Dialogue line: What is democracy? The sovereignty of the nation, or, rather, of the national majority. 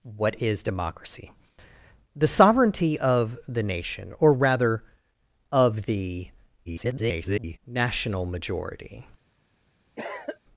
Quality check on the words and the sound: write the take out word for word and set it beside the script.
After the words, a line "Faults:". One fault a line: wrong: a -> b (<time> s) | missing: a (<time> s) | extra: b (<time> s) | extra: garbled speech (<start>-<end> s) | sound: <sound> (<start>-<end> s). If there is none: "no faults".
What is democracy? The sovereignty of the nation, or, rather, of the [garbled] national majority.
Faults:
extra: garbled speech (6.7-7.6 s)
sound: cough (10.0-10.4 s)